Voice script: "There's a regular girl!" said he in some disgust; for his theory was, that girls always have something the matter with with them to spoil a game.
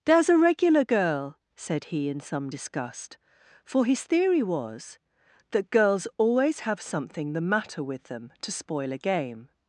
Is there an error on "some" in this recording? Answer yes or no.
no